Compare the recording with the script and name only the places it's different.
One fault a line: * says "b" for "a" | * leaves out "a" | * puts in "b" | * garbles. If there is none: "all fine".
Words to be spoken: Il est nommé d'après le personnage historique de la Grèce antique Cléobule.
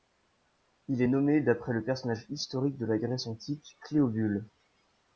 all fine